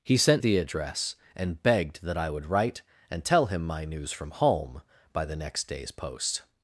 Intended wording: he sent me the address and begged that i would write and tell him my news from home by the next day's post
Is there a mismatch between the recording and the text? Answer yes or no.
yes